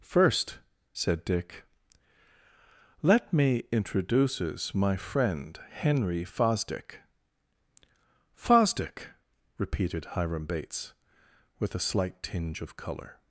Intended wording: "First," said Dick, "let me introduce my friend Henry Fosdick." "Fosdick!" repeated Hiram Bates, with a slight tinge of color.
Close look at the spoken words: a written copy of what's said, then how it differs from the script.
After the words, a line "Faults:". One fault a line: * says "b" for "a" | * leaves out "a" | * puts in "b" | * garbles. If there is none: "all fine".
"First," said Dick, "let me introduces my friend Henry Fosdick." "Fosdick!" repeated Hiram Bates, with a slight tinge of color.
Faults:
* says "introduces" for "introduce"